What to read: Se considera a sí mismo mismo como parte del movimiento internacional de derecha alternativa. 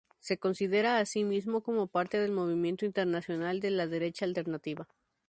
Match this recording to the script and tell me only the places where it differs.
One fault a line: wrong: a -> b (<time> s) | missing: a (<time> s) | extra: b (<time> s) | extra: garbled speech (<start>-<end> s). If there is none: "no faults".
missing: mismo (1.6 s)
extra: la (3.7 s)